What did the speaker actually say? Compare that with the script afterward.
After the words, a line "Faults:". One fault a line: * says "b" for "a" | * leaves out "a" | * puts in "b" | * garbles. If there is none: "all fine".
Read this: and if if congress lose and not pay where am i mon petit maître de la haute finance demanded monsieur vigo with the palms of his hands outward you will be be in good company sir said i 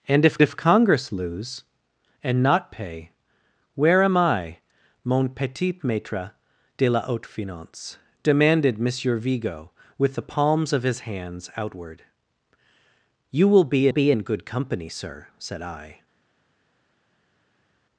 and if if congress lose and not pay where am i mon petit maître de la haute finance demanded monsieur vigo with the palms of his hands outward you will be be in good company sir said i
Faults:
all fine